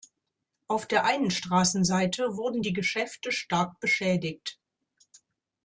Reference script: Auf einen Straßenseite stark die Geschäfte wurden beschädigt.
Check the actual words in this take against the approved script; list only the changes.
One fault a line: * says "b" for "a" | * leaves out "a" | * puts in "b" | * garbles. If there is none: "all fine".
* puts in "der"
* says "wurden" for "stark"
* says "stark" for "wurden"